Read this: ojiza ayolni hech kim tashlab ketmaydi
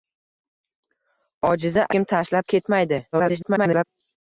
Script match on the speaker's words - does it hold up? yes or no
no